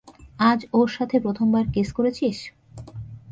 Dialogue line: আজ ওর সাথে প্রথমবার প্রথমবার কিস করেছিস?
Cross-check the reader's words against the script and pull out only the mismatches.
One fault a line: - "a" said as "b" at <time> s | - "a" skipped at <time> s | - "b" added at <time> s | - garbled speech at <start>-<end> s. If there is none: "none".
- "প্রথমবার" skipped at 1.6 s